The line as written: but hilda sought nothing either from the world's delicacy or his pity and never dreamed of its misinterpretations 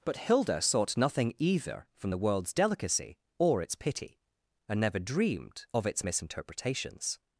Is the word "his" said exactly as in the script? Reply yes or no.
no